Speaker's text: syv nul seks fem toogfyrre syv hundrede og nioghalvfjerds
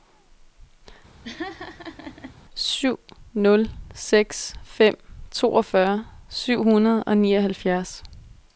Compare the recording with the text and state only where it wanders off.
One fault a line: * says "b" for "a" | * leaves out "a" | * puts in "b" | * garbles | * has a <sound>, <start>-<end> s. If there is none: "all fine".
* has a laugh, 1.2-2.3 s